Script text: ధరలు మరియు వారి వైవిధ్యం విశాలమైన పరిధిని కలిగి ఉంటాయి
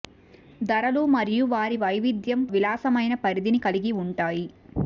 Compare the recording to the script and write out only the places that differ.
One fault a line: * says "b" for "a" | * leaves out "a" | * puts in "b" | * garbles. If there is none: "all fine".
all fine